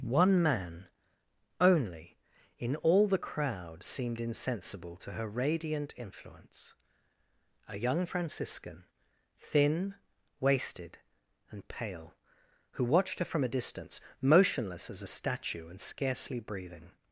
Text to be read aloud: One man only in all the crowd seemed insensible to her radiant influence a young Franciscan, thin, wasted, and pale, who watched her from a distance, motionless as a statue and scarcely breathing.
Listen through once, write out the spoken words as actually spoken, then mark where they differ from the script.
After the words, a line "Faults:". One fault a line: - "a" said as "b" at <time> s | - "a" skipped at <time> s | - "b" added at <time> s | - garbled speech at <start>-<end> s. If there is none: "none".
One man only in all the crowd seemed insensible to her radiant influence a young Franciscan, thin, wasted, and pale, who watched her from a distance, motionless as a statue and scarcely breathing.
Faults:
none